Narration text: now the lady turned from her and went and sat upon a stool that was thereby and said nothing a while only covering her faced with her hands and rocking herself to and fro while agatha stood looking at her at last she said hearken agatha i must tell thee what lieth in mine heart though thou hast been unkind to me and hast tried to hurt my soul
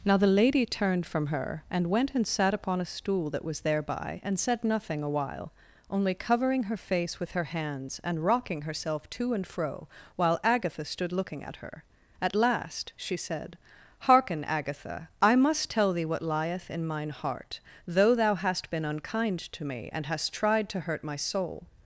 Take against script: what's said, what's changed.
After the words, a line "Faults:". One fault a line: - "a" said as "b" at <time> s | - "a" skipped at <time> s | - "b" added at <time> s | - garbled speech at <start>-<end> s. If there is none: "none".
now the lady turned from her and went and sat upon a stool that was thereby and said nothing a while only covering her face with her hands and rocking herself to and fro while agatha stood looking at her at last she said hearken agatha i must tell thee what lieth in mine heart though thou hast been unkind to me and hast tried to hurt my soul
Faults:
- "faced" said as "face" at 6.8 s